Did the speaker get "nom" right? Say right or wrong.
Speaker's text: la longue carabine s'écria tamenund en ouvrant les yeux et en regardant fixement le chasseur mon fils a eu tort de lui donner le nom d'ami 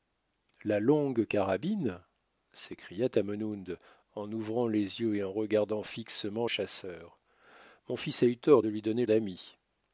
wrong